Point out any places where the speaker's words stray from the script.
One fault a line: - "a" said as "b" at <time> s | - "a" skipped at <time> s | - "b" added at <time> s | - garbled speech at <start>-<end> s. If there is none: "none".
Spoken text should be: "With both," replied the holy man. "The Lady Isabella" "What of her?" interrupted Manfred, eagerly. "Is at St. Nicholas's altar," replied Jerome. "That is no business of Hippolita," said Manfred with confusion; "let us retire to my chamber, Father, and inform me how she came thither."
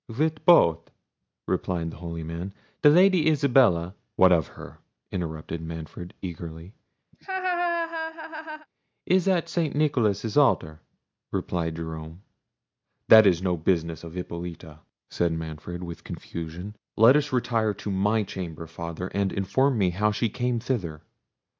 none